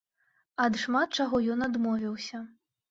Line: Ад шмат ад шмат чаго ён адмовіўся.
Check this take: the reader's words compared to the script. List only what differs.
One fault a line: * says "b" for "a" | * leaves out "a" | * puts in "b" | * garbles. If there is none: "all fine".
* leaves out "ад шмат"